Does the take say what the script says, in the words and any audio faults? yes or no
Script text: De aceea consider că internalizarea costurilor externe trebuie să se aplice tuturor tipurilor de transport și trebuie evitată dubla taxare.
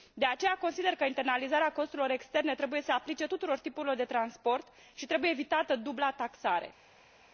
yes